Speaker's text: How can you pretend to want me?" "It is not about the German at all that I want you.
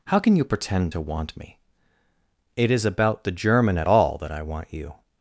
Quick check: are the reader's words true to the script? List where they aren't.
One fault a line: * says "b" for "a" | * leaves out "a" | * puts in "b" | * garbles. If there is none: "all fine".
* leaves out "not"